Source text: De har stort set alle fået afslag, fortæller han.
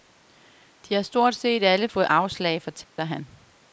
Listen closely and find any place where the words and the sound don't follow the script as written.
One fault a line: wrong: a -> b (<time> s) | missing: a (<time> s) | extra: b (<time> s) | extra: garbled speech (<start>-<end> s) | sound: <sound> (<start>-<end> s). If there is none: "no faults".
sound: dropout (2.8-3.0 s)